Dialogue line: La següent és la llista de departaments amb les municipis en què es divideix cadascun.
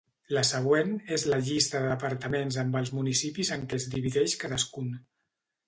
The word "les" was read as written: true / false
false